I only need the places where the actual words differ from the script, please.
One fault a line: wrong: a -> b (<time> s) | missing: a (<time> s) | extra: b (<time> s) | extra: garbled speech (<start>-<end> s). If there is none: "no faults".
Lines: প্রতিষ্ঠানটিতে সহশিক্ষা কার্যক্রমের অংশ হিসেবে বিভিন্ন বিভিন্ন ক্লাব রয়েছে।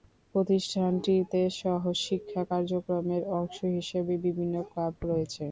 missing: বিভিন্ন (4.5 s)